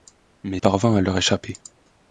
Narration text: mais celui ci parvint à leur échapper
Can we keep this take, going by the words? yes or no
no